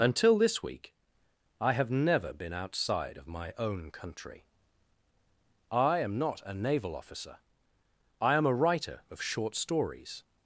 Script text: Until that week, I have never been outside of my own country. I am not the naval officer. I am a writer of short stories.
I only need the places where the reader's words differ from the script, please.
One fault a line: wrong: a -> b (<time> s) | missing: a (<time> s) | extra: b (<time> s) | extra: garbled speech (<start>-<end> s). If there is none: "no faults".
wrong: that -> this (0.4 s)
wrong: the -> a (6.4 s)